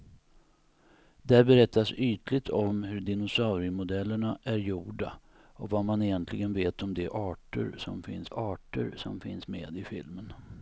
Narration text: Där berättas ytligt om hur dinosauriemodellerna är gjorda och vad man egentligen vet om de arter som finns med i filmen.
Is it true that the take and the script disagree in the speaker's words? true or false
true